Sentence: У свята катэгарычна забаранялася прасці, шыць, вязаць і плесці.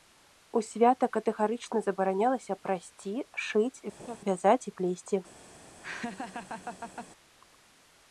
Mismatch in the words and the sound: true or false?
true